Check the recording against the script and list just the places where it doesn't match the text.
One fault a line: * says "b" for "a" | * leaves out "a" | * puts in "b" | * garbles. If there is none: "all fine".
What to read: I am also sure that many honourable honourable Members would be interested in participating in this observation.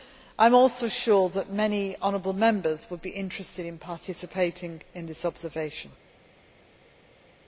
* leaves out "honourable"